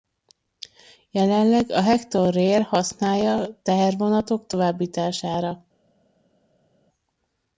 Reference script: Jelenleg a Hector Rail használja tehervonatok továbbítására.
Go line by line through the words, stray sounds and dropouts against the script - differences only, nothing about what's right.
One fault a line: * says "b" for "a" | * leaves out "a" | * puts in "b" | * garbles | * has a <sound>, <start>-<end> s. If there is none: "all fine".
all fine